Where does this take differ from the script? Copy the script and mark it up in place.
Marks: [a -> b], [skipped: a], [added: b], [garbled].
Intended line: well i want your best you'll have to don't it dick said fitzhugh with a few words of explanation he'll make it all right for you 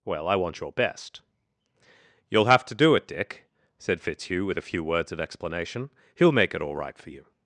well i want your best you'll have to [don't -> do] it dick said fitzhugh with a few words of explanation he'll make it all right for you